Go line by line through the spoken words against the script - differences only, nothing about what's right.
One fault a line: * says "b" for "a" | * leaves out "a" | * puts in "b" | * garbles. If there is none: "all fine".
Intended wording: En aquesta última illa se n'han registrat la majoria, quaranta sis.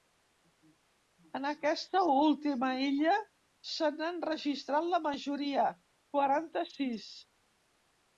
all fine